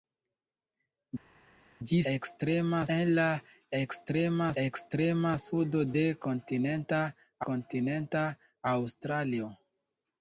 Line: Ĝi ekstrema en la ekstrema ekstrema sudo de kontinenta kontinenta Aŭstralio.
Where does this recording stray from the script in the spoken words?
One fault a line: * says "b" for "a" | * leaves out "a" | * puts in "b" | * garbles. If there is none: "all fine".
all fine